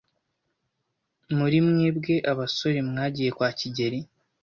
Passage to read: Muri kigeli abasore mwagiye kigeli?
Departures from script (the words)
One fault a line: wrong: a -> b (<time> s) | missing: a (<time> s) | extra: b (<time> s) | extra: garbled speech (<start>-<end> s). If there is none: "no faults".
wrong: kigeli -> mwebwe (1.7 s)
extra: kwa (3.3 s)